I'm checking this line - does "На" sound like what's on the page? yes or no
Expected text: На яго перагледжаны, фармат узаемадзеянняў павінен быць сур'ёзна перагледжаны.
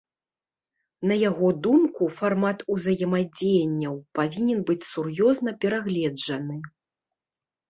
yes